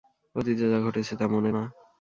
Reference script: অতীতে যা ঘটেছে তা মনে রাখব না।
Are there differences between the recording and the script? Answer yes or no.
yes